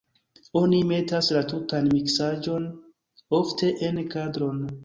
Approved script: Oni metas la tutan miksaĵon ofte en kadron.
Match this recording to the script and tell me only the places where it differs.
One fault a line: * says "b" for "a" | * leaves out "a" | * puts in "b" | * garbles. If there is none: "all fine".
all fine